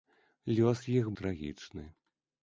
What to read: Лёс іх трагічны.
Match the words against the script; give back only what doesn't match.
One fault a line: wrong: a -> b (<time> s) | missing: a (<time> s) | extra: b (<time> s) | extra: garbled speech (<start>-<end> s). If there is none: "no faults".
no faults